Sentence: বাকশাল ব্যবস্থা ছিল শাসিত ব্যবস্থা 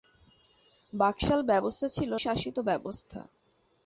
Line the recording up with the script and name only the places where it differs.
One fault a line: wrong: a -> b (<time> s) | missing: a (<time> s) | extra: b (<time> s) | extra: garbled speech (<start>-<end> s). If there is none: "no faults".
no faults